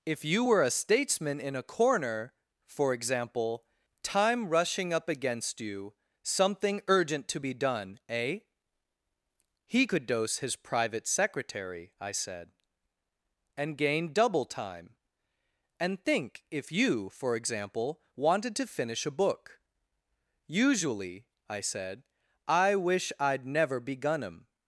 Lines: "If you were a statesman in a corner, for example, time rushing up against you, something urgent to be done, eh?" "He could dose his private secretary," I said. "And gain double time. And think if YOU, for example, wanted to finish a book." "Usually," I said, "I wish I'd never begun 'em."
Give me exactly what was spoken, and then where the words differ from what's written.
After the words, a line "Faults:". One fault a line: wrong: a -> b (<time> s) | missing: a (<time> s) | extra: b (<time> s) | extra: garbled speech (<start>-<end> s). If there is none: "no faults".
"If you were a statesman in a corner, for example, time rushing up against you, something urgent to be done, eh?" "He could dose his private secretary," I said. "And gain double time. And think if YOU, for example, wanted to finish a book." "Usually," I said, "I wish I'd never begun 'em."
Faults:
no faults